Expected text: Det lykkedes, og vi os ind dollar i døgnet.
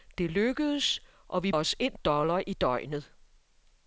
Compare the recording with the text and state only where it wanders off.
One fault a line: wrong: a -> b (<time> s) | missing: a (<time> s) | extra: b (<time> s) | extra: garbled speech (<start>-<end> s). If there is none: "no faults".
no faults